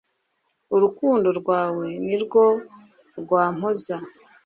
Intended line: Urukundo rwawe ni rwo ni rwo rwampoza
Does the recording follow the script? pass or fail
fail